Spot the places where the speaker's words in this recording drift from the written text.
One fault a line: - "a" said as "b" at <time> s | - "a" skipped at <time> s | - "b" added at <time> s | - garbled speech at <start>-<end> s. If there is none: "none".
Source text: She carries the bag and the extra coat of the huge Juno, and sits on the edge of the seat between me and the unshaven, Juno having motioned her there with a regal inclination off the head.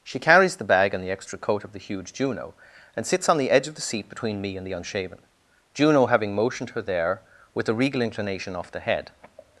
none